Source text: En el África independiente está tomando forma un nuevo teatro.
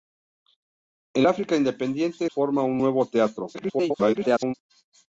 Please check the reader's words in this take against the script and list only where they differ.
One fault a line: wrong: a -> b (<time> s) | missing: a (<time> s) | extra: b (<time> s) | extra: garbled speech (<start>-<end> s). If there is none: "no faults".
missing: el (1.2 s)
missing: está tomando (2.2 s)
extra: garbled speech (3.5-4.5 s)